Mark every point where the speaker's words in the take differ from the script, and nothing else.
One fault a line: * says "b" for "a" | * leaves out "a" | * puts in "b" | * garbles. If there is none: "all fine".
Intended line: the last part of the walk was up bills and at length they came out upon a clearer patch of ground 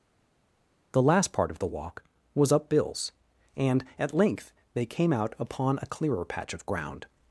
all fine